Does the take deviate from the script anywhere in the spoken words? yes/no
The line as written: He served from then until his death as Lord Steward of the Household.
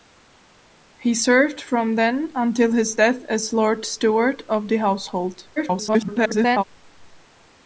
yes